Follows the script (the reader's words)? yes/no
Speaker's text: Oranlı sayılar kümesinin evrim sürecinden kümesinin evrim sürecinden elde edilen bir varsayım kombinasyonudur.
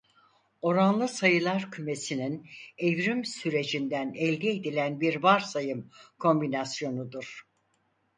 no